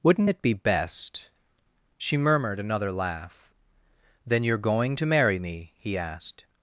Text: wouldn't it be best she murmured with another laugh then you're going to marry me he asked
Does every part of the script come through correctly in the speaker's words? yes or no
no